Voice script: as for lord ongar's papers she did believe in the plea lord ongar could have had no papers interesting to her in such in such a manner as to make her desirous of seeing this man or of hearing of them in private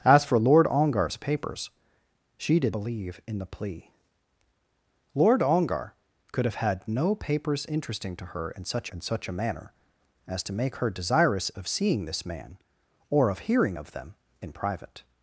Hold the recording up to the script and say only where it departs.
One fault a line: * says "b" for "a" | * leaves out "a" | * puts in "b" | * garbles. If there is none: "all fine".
all fine